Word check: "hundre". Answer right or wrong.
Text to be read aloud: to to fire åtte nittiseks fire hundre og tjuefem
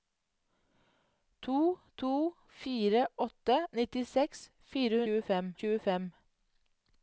wrong